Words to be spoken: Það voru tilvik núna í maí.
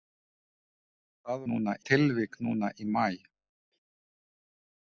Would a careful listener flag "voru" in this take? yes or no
yes